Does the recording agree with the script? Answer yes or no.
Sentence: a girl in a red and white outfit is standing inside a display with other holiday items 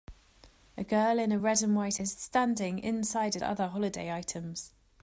no